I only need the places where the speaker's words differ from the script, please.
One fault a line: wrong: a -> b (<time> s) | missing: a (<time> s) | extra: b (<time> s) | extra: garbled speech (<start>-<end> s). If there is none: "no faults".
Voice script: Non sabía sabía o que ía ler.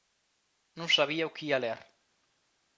missing: sabía (1.3 s)